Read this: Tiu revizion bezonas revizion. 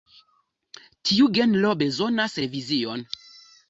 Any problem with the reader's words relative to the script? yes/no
yes